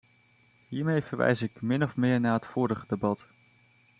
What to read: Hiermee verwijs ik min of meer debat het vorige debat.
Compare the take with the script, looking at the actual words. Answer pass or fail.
fail